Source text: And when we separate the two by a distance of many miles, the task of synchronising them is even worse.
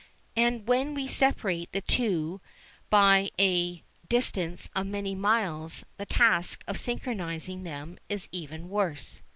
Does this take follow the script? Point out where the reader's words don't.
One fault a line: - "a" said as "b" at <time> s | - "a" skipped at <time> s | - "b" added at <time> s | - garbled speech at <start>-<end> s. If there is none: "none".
none